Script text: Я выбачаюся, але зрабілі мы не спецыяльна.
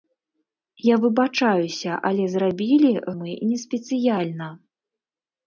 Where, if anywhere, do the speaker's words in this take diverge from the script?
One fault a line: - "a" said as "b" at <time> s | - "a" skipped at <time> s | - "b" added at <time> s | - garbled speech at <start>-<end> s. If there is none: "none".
none